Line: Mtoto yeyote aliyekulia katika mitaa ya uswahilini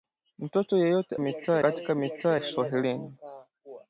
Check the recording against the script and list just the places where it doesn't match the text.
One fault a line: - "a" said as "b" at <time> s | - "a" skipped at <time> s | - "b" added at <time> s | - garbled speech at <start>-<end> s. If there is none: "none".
- "aliyekulia" said as "mitaa" at 1.2 s
- "ya" skipped at 2.4 s